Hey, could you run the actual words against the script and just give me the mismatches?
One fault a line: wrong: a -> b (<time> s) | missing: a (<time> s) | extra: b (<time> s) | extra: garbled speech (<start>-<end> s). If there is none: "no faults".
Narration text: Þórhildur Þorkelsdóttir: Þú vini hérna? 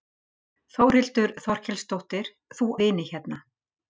no faults